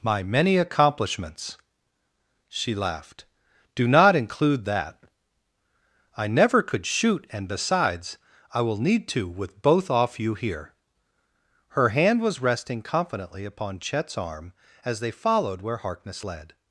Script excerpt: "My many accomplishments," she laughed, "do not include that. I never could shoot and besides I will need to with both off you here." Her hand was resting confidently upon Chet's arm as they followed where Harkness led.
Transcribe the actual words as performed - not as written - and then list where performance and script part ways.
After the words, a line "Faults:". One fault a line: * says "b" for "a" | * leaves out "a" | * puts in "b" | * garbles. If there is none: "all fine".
"My many accomplishments," she laughed, "do not include that. I never could shoot and besides I will need to with both off you here." Her hand was resting confidently upon Chet's arm as they followed where Harkness led.
Faults:
all fine